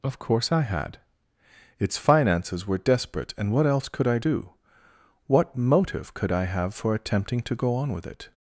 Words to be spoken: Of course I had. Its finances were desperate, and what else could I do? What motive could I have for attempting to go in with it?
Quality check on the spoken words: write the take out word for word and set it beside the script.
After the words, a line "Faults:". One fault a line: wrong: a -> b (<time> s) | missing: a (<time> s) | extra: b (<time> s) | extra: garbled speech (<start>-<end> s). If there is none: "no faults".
Of course I had. Its finances were desperate, and what else could I do? What motive could I have for attempting to go on with it?
Faults:
wrong: in -> on (7.7 s)